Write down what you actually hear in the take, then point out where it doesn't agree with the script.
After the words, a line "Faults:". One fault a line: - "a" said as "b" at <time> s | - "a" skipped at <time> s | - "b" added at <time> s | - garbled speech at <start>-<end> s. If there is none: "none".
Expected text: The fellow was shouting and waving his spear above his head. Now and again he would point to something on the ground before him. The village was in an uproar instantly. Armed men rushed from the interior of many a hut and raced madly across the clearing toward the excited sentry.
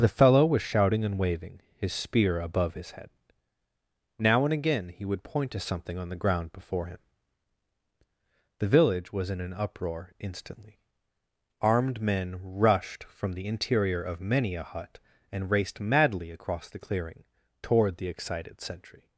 The fellow was shouting and waving his spear above his head. Now and again he would point to something on the ground before him. The village was in an uproar instantly. Armed men rushed from the interior of many a hut and raced madly across the clearing toward the excited sentry.
Faults:
none